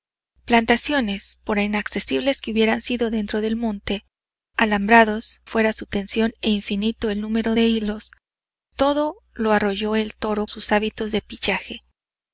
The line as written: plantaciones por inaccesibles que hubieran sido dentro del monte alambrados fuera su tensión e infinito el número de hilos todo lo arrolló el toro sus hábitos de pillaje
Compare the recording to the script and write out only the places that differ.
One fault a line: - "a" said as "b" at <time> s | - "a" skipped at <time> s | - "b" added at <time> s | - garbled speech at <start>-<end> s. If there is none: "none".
none